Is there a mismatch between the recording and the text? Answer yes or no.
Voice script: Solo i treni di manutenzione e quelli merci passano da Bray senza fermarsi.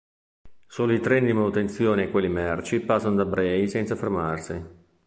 no